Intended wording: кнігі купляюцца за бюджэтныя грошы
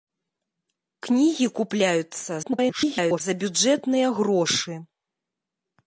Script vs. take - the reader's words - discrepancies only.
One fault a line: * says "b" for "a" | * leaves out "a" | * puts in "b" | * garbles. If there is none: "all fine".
* garbles